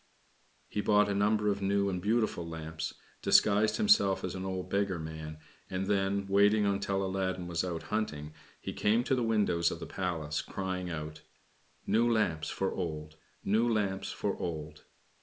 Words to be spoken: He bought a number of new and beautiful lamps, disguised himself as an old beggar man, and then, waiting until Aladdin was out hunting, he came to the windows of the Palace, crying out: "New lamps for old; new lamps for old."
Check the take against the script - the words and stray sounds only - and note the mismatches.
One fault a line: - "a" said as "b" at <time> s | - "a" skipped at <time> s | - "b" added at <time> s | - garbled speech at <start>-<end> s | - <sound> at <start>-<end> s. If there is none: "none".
none